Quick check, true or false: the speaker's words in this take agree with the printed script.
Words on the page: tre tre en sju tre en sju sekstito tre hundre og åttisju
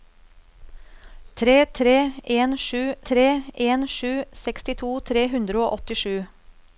true